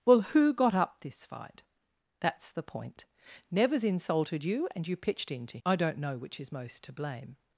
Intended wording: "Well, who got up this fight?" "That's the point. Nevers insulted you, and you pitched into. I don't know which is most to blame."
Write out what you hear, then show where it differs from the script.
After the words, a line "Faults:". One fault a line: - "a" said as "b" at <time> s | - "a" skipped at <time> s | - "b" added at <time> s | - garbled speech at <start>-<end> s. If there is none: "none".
"Well, who got up this fight?" "That's the point. Nevers insulted you, and you pitched into. I don't know which is most to blame."
Faults:
none